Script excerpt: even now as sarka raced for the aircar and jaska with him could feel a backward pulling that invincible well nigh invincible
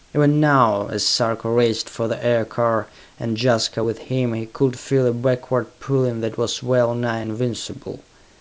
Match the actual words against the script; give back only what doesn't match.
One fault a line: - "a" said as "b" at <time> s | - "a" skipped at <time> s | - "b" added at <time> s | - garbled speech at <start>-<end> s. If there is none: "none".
- "he" added at 4.3 s
- "invincible" said as "was" at 6.4 s